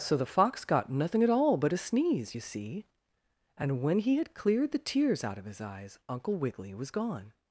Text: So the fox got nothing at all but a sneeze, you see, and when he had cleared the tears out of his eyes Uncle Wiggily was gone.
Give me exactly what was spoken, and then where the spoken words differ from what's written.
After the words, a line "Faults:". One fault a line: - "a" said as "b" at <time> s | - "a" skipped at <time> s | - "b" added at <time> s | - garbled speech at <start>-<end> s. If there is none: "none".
So the fox got nothing at all but a sneeze, you see, and when he had cleared the tears out of his eyes Uncle Wiggily was gone.
Faults:
none